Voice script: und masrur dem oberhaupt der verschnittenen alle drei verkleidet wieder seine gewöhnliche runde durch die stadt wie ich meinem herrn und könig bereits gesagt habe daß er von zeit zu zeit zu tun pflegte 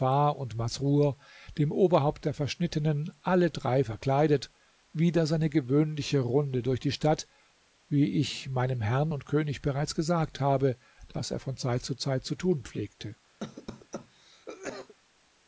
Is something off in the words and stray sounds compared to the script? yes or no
yes